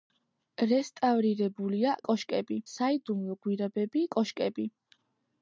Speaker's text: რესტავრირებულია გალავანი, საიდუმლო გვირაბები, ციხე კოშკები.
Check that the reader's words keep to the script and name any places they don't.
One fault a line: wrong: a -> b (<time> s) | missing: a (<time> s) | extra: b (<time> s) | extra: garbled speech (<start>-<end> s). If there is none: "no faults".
wrong: გალავანი -> კოშკები (2.1 s)
missing: ციხე (4.0 s)